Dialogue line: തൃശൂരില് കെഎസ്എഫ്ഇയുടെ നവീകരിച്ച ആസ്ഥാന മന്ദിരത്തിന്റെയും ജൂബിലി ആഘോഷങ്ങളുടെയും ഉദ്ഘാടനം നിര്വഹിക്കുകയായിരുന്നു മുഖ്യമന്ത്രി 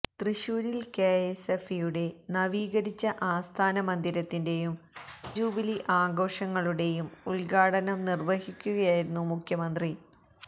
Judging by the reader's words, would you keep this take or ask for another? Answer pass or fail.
pass